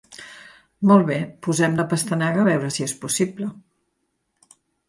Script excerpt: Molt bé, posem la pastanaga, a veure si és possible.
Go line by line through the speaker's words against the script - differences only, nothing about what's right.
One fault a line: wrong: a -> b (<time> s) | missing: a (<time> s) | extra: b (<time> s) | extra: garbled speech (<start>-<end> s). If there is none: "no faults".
no faults